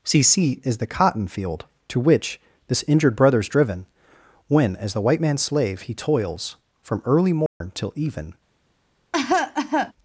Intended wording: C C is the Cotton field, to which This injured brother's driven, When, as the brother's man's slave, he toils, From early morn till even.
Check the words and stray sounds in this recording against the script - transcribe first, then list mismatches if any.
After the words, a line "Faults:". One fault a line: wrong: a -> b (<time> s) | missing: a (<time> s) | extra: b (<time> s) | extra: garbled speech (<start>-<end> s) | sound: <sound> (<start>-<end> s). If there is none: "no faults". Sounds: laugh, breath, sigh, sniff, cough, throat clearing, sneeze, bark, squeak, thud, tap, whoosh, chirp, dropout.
C C is the Cotton field, to which This injured brother's driven, When, as the white man's slave, he toils, From early morn till even.
Faults:
wrong: brother's -> white (5.0 s)
sound: dropout (7.5-7.6 s)
sound: cough (9.1-9.9 s)